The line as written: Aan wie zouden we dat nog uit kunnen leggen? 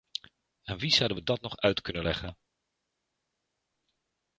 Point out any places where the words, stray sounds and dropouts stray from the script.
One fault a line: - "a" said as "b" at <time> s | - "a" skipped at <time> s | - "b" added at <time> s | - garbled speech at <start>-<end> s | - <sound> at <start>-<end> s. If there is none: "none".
none